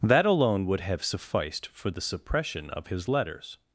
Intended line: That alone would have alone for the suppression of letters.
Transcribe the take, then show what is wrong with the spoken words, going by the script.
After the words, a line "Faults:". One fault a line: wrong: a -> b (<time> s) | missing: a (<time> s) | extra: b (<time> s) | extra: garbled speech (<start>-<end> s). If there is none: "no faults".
That alone would have sufficed for the suppression of his letters.
Faults:
wrong: alone -> sufficed (1.0 s)
extra: his (2.9 s)